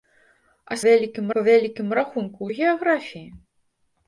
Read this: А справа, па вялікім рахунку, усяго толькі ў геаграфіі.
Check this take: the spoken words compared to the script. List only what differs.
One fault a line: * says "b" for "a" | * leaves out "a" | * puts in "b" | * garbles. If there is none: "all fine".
* says "вялікім" for "справа"
* leaves out "усяго толькі"